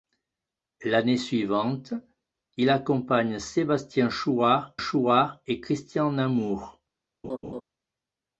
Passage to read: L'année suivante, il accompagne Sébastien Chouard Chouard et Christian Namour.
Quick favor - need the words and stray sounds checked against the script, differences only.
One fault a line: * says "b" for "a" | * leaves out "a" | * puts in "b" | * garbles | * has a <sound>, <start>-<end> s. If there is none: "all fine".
* has a laugh, 7.2-7.6 s